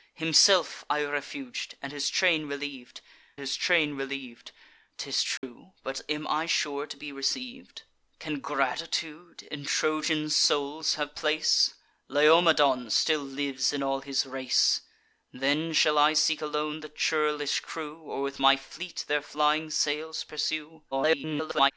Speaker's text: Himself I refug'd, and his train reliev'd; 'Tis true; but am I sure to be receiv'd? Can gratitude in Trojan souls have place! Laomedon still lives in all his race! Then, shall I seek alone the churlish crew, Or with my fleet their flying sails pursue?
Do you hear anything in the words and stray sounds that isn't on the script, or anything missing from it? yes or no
yes